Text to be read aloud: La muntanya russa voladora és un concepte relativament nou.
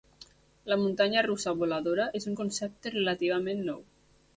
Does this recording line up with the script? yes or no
yes